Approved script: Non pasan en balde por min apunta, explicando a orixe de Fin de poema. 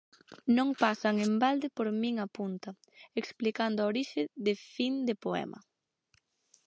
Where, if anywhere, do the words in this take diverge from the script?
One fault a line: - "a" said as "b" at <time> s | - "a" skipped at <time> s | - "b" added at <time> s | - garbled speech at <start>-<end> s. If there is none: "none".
none